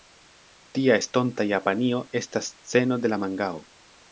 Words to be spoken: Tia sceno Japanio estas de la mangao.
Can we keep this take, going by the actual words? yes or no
no